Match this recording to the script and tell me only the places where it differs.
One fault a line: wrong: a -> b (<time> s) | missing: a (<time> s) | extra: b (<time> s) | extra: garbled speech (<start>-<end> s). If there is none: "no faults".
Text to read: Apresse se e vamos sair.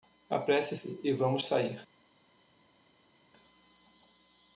no faults